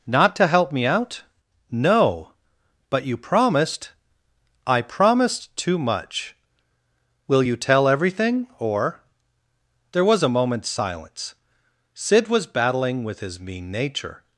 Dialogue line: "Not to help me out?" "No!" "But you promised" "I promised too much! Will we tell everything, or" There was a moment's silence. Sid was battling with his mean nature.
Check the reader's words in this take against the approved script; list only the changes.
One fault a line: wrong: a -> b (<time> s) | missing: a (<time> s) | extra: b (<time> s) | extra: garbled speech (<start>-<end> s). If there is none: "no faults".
wrong: we -> you (7.4 s)